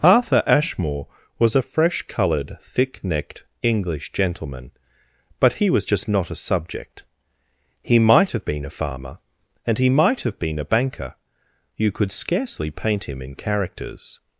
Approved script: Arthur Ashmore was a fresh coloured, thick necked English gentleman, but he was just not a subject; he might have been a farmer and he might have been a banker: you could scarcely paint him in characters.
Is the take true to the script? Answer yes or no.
yes